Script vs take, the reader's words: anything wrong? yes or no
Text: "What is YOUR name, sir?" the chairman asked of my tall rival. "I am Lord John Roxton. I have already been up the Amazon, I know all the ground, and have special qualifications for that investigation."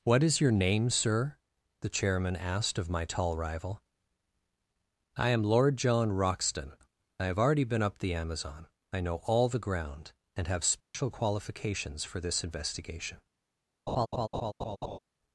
yes